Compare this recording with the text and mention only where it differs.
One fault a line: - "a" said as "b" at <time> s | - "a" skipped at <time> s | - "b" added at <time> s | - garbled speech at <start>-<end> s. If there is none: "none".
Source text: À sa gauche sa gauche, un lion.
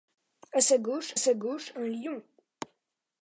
none